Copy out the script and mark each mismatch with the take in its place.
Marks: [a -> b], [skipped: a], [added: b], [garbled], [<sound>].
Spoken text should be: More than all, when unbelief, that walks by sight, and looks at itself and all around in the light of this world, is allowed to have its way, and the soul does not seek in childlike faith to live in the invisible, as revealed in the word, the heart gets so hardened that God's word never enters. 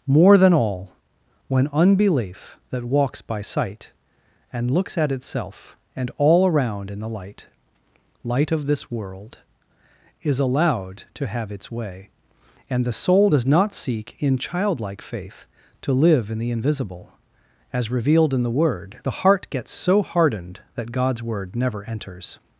More than all, when unbelief, that walks by sight, and looks at itself and all around in the light [added: light] of this world, is allowed to have its way, and the soul does not seek in childlike faith to live in the invisible, as revealed in the word, the heart gets so hardened that God's word never enters.